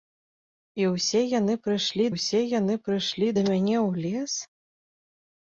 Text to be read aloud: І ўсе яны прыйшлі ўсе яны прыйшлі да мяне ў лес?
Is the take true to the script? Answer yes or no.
yes